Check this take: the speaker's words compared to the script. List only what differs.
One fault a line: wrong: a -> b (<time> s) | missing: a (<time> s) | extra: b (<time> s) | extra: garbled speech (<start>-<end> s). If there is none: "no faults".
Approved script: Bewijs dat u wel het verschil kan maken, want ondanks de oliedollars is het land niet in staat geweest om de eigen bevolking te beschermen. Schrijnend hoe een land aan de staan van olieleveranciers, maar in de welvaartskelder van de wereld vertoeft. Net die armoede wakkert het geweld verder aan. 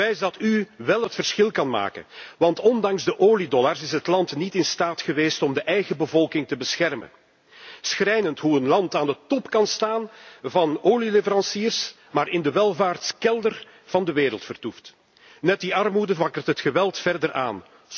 extra: top kan (9.3 s)